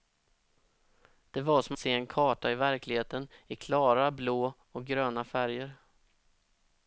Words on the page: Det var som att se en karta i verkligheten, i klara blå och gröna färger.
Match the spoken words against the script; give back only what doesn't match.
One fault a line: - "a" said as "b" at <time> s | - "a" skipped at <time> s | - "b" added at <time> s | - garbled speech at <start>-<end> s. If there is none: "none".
- "att" skipped at 1.8 s